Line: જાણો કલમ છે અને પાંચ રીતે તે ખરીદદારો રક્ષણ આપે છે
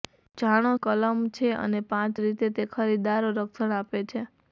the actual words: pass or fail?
pass